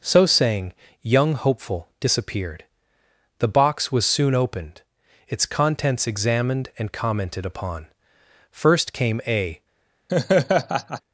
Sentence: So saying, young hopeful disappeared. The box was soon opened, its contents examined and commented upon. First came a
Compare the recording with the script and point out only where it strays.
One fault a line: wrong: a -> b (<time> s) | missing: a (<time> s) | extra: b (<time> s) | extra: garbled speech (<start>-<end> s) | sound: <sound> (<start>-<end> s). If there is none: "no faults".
sound: laugh (10.1-11.0 s)